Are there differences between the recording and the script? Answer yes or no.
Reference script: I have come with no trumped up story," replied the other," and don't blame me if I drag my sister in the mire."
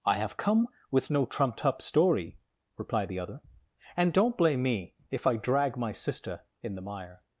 no